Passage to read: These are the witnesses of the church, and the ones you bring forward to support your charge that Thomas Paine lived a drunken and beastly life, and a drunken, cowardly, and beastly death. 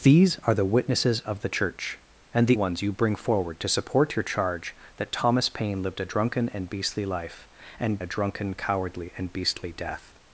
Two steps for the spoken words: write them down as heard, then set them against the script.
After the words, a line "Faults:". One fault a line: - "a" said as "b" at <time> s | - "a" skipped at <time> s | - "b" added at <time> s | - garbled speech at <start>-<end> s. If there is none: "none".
These are the witnesses of the church, and the ones you bring forward to support your charge that Thomas Paine lived a drunken and beastly life, and a drunken, cowardly, and beastly death.
Faults:
none